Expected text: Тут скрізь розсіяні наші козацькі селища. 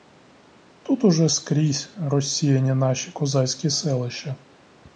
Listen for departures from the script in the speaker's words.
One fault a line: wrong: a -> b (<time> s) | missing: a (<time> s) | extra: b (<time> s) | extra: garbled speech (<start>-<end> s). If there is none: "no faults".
extra: уже (1.0 s)